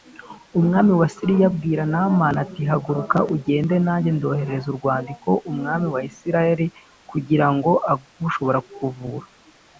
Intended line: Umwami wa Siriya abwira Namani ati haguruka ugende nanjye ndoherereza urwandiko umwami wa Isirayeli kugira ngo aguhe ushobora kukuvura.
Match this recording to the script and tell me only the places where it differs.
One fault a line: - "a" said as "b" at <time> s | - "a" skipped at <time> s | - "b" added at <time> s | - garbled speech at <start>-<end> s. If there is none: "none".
none